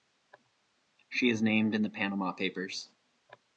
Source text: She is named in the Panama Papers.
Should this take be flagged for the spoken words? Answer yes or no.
no